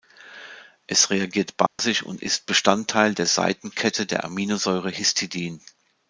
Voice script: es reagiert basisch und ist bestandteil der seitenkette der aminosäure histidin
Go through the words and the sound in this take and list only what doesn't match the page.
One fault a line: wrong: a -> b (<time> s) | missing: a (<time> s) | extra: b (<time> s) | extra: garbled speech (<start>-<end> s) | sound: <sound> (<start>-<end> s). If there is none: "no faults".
sound: dropout (1.7-1.8 s)